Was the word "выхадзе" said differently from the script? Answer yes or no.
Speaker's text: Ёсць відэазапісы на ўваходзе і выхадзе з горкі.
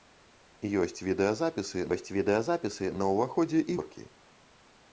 yes